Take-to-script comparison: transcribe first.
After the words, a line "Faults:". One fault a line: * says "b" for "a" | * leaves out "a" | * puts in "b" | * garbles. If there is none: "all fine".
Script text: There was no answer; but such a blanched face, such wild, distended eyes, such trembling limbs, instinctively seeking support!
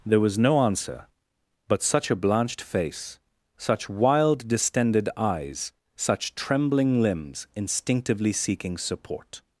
There was no answer; but such a blanched face, such wild, distended eyes, such trembling limbs, instinctively seeking support!
Faults:
all fine